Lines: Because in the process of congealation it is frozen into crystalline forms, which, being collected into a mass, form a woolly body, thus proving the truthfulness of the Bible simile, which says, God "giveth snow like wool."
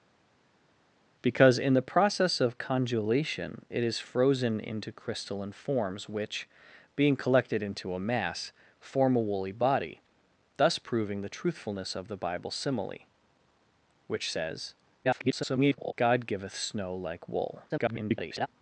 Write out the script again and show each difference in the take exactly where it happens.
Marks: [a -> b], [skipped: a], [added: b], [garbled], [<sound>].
Because in the process of congealation it is frozen into crystalline forms, which, being collected into a mass, form a woolly body, thus proving the truthfulness of the Bible simile, which says, [garbled] God "giveth snow like wool." [garbled]